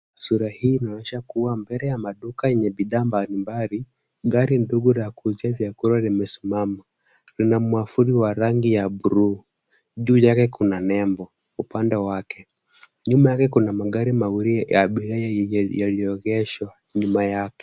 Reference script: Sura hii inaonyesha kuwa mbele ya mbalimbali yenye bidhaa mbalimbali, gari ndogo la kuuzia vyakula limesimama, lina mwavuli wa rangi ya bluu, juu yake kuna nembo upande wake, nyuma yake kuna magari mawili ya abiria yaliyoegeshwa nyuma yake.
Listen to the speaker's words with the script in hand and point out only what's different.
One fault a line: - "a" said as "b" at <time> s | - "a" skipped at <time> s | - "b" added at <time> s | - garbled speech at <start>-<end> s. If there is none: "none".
- "mbalimbali" said as "maduka" at 2.0 s